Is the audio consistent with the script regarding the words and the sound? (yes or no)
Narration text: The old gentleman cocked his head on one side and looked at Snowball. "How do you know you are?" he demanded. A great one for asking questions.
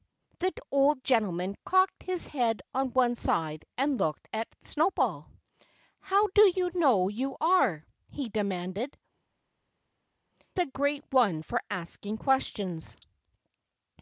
yes